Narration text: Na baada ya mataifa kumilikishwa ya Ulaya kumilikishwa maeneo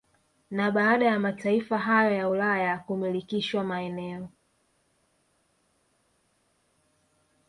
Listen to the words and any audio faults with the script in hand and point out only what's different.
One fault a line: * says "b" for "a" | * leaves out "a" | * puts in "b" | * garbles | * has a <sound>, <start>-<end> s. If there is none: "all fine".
* says "hayo" for "kumilikishwa"